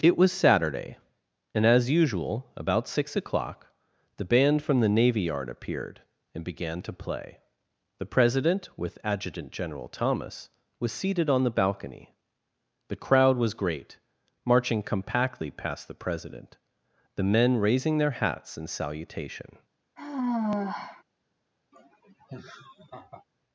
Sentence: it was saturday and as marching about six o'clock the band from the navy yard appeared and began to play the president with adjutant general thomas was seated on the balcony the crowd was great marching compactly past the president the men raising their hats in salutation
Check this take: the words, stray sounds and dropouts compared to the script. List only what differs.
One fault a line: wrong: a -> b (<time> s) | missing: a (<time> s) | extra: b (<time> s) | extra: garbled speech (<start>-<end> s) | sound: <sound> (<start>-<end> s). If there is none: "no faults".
wrong: marching -> usual (1.9 s)
sound: sigh (20.0-21.0 s)
sound: laugh (21.7-23.2 s)